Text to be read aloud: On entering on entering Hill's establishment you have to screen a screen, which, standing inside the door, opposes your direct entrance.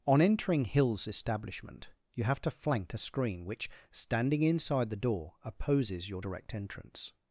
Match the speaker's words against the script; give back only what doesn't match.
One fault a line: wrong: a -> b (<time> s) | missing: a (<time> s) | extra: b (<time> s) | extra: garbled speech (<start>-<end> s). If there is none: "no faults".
missing: on entering (0.7 s)
wrong: screen -> flank (2.5 s)